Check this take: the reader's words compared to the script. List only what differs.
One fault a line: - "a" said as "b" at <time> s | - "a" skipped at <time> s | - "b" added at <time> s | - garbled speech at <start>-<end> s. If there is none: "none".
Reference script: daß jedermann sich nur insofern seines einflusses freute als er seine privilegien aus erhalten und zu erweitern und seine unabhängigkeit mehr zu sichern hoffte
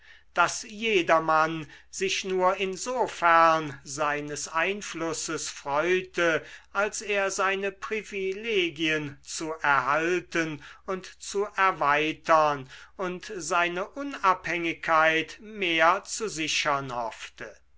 - "aus" said as "zu" at 9.2 s